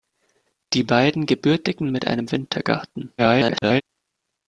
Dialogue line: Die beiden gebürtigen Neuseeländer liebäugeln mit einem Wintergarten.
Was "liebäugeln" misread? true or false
true